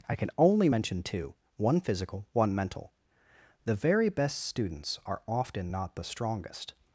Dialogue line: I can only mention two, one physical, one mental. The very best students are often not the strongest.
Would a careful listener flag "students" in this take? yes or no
no